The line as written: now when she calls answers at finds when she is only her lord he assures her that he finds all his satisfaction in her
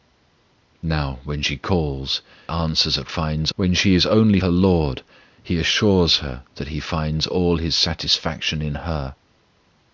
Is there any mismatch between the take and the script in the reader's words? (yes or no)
no